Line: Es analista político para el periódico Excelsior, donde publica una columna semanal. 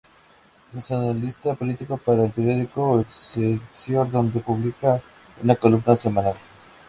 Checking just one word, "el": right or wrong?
right